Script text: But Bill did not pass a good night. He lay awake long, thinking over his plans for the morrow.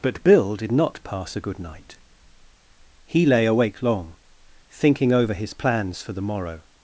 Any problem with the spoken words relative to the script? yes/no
no